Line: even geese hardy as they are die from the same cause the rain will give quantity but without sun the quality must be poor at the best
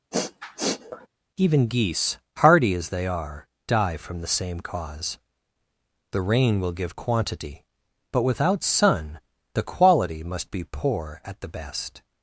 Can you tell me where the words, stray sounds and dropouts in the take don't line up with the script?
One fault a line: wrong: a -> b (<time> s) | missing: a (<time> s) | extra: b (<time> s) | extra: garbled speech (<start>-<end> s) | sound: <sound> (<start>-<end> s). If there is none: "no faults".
sound: sniff (0.1-1.1 s)